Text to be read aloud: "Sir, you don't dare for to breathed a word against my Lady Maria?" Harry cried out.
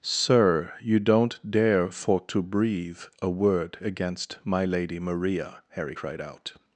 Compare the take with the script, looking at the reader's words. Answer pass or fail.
fail